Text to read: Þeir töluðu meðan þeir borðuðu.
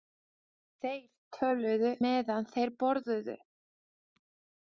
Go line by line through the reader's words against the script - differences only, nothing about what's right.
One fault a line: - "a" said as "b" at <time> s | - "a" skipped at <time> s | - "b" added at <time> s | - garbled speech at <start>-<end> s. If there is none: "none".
none